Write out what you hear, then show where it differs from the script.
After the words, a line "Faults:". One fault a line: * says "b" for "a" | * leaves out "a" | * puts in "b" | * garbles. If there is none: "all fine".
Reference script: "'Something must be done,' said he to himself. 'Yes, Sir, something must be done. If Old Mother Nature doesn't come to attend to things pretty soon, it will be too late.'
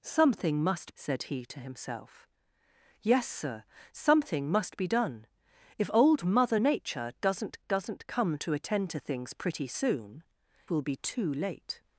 "'Something must,' said he to himself. 'Yes, Sir, something must be done. If Old Mother Nature doesn't doesn't come to attend to things pretty soon, will be too late.'
Faults:
* leaves out "be done"
* puts in "doesn't"
* leaves out "it"